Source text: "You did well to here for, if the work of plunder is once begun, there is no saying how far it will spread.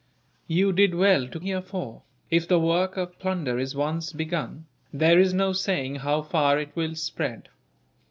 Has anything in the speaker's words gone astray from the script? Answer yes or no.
no